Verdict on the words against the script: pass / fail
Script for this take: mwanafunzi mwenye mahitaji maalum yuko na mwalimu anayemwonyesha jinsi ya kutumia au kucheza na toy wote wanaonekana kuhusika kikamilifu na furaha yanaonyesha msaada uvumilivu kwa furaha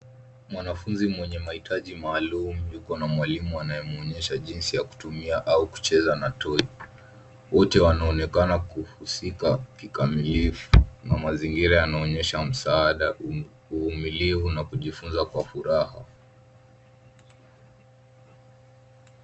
fail